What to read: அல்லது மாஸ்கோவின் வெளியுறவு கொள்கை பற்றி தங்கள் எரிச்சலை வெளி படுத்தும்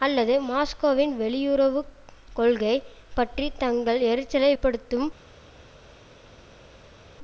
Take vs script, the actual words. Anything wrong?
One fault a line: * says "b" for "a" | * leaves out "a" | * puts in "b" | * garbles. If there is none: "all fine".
* leaves out "வெளி"